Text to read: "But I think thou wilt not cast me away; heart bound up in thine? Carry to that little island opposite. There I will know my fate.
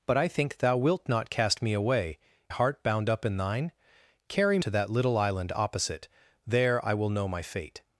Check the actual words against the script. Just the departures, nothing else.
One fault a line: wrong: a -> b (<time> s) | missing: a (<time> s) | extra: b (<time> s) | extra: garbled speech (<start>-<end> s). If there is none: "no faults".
no faults